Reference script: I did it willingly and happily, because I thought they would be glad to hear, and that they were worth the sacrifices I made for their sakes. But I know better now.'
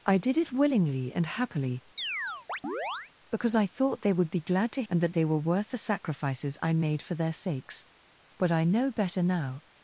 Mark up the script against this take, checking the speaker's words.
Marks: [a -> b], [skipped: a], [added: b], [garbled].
I did it willingly and happily, because I thought they would be glad to [skipped: hear,] and that they were worth the sacrifices I made for their sakes. But I know better now.'